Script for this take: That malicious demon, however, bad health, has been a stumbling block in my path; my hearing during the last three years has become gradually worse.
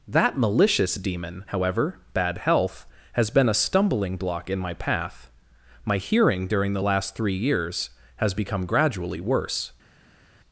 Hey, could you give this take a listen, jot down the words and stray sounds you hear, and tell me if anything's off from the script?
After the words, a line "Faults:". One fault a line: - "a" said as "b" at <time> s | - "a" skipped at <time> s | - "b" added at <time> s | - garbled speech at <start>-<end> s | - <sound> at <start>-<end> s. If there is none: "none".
That malicious demon, however, bad health, has been a stumbling block in my path; my hearing during the last three years has become gradually worse.
Faults:
none